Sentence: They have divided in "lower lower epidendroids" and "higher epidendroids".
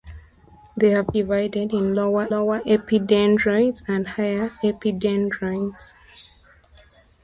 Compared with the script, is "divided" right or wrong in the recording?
right